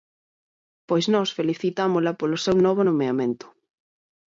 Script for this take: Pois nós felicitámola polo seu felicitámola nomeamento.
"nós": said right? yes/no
yes